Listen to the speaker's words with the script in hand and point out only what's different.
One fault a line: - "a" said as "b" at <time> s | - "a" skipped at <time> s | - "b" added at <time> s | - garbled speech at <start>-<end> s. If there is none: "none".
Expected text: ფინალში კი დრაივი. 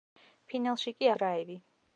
none